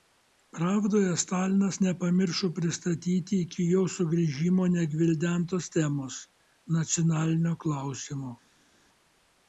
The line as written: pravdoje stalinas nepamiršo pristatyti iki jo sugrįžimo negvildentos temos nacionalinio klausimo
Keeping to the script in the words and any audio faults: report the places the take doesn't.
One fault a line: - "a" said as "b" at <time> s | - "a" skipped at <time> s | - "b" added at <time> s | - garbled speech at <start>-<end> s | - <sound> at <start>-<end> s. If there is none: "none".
none